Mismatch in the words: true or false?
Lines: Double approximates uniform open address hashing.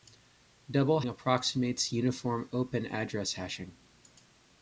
false